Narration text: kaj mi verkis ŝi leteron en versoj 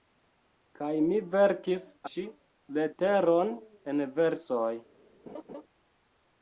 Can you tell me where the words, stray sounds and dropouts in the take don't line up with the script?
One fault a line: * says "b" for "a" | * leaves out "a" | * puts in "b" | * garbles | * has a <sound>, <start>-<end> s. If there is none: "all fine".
* has a laugh, 5.3-5.6 s